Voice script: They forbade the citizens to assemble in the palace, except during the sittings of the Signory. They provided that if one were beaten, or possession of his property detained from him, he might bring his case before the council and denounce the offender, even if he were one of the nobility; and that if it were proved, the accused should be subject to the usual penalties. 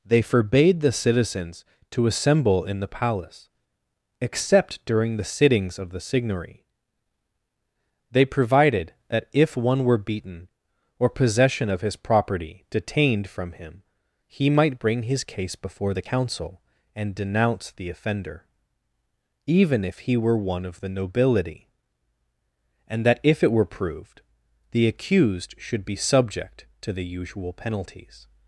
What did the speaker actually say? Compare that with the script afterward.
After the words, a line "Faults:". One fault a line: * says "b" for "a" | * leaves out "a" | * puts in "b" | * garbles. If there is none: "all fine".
They forbade the citizens to assemble in the palace, except during the sittings of the Signory. They provided that if one were beaten, or possession of his property detained from him, he might bring his case before the council and denounce the offender, even if he were one of the nobility; and that if it were proved, the accused should be subject to the usual penalties.
Faults:
all fine